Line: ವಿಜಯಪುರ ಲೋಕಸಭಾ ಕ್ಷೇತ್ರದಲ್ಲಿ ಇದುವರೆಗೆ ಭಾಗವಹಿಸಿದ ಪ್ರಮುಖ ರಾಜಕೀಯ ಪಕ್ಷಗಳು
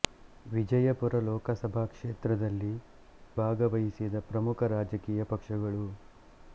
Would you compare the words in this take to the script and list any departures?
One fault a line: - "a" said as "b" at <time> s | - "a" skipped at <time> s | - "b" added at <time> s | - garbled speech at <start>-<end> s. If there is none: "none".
- "ಇದುವರೆಗೆ" skipped at 2.7 s